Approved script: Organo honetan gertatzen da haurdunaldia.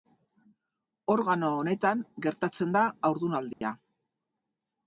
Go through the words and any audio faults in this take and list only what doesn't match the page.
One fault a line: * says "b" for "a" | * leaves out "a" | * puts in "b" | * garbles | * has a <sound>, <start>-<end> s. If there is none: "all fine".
* has a dropout, 3.5-3.6 s